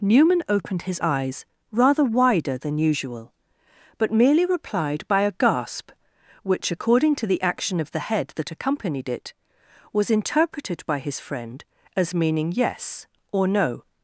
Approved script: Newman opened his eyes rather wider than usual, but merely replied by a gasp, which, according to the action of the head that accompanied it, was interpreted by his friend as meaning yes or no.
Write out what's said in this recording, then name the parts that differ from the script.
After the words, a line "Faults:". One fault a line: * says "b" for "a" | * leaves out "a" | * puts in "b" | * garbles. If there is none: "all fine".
Newman opened his eyes rather wider than usual, but merely replied by a gasp, which, according to the action of the head that accompanied it, was interpreted by his friend as meaning yes or no.
Faults:
all fine